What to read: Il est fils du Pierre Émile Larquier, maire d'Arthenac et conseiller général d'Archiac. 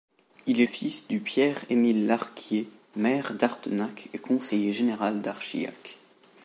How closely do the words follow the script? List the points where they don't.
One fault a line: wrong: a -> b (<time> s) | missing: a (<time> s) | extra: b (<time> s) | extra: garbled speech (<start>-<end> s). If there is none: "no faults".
no faults